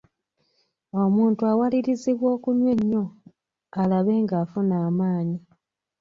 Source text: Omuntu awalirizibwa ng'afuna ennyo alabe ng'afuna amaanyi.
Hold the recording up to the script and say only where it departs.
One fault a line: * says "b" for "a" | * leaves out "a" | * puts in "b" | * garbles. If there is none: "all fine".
* says "okunywa" for "ng'afuna"